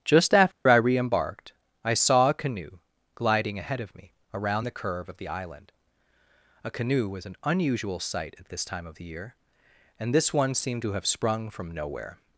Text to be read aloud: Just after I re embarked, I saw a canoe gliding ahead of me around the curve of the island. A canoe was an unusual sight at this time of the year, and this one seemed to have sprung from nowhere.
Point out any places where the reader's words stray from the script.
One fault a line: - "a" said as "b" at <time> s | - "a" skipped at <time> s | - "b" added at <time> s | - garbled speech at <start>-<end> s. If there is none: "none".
none